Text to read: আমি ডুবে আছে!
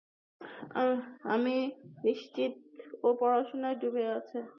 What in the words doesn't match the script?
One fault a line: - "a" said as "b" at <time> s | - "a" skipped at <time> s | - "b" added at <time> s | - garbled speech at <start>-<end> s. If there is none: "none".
- "নিশ্চিত ও পড়াশোনায়" added at 2.0 s